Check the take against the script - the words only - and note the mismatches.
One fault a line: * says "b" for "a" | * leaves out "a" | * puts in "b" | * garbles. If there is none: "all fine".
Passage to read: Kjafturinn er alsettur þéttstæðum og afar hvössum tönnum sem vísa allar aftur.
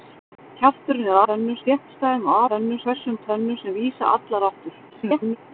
* says "tönnum" for "alsettur"
* says "tönnum" for "afar"
* garbles